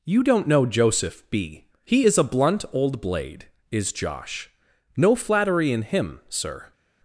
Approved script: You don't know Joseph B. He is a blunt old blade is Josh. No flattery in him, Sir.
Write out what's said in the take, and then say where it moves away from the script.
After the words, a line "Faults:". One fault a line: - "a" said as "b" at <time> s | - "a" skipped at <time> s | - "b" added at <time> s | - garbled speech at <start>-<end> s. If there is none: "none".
You don't know Joseph B. He is a blunt old blade is Josh. No flattery in him, Sir.
Faults:
none